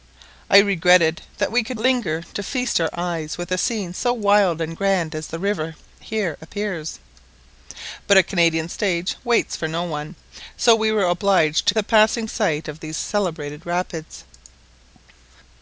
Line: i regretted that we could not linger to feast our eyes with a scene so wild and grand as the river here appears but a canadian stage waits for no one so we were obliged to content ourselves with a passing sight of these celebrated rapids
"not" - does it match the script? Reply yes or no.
no